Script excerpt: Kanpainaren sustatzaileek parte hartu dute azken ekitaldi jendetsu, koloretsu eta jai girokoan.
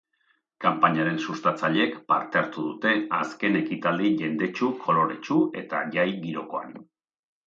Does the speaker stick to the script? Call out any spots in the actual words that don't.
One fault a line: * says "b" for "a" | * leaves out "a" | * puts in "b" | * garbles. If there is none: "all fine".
all fine